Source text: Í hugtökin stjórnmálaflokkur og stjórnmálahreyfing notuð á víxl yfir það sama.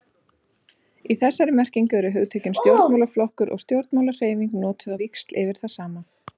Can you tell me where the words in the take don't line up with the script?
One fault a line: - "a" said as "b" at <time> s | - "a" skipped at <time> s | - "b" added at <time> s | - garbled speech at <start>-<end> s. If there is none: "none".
- "þessari merkingu eru" added at 1.2 s